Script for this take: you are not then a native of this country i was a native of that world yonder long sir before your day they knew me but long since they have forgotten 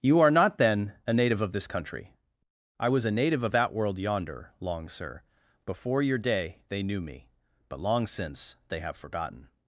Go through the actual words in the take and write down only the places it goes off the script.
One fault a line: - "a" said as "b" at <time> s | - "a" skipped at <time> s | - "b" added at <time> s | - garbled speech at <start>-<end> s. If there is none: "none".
none